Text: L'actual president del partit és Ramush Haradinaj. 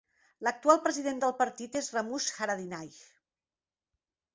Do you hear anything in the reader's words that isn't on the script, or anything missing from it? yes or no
no